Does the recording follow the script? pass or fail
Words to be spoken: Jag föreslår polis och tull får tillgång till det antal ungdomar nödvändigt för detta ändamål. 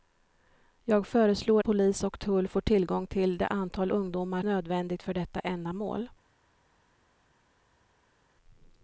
pass